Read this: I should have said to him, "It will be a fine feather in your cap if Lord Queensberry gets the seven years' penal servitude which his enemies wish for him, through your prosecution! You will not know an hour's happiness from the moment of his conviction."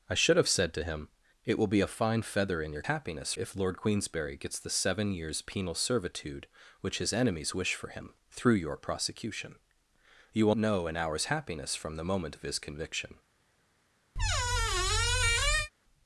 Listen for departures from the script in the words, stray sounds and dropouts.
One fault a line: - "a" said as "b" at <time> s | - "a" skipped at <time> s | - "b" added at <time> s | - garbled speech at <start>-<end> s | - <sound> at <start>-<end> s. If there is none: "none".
- "cap" said as "happiness" at 2.8 s
- "not" skipped at 10.5 s
- squeak at 14.2-15.7 s